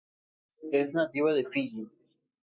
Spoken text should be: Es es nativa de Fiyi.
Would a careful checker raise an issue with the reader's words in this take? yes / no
yes